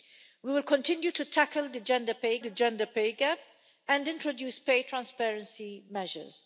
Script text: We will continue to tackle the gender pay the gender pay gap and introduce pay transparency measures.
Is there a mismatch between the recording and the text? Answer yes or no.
no